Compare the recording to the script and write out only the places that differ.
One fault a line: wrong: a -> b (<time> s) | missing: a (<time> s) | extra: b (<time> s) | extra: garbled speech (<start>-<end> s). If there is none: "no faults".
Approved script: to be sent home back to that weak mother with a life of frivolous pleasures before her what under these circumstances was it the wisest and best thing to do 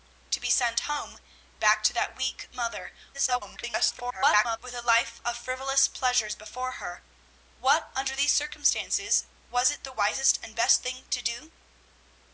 extra: garbled speech (3.1-4.6 s)